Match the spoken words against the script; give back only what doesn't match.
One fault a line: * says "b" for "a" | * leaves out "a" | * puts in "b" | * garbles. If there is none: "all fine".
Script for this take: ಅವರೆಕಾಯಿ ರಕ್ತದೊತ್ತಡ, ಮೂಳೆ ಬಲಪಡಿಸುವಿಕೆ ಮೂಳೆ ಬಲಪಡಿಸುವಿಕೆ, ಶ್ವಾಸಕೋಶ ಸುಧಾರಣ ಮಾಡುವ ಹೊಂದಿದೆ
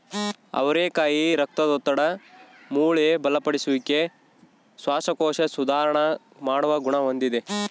* leaves out "ಮೂಳೆ ಬಲಪಡಿಸುವಿಕೆ"
* puts in "ಗುಣ"